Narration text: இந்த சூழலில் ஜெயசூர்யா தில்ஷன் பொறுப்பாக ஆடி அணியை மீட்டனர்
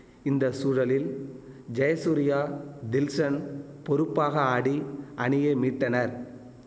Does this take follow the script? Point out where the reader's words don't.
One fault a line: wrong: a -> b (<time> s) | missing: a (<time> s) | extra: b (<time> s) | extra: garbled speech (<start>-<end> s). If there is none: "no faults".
no faults